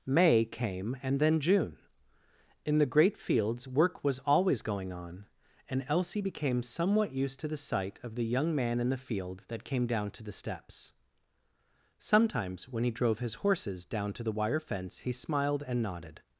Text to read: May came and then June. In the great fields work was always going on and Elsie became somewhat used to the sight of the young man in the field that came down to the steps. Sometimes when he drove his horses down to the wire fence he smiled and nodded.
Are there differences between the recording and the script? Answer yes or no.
no